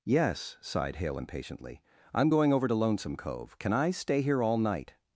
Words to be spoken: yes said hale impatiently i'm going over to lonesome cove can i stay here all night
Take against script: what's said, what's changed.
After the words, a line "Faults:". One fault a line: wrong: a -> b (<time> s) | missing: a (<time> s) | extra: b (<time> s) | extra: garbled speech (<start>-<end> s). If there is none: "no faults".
yes sighed hale impatiently i'm going over to lonesome cove can i stay here all night
Faults:
wrong: said -> sighed (0.6 s)